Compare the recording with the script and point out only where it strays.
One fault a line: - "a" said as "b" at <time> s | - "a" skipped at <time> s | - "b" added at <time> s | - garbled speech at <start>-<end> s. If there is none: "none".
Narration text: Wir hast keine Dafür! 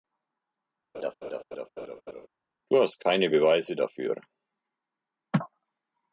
- "Wir" said as "Du" at 2.7 s
- "Beweise" added at 3.3 s